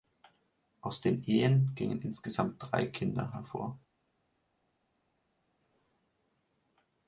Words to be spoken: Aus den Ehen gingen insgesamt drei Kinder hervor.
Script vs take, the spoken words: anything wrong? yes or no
no